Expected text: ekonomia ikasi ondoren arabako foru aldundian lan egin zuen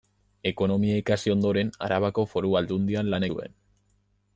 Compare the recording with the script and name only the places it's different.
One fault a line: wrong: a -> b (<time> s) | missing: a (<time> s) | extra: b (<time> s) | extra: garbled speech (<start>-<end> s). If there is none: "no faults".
missing: egin (3.3 s)